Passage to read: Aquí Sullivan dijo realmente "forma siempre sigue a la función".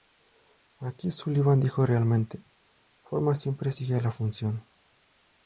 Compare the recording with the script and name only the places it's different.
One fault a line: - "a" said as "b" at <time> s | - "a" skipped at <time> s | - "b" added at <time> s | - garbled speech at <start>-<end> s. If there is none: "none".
none